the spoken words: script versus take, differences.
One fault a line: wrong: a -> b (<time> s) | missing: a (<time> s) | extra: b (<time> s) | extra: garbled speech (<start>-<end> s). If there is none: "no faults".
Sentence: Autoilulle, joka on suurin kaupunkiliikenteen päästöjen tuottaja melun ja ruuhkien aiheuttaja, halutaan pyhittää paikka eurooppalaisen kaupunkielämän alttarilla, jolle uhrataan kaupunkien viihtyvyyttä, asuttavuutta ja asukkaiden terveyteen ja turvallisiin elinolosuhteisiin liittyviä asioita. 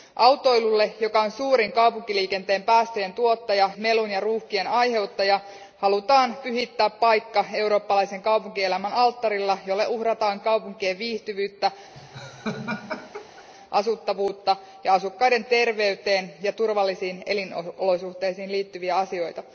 no faults